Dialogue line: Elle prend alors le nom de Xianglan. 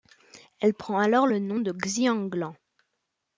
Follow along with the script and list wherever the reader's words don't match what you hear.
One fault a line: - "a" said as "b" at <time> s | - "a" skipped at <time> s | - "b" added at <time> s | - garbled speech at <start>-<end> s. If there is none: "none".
none